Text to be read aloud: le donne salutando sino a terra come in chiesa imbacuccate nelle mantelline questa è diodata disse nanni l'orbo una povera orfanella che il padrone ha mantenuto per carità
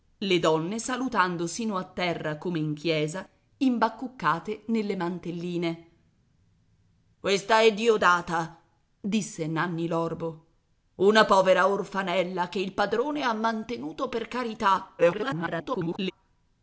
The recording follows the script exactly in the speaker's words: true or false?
false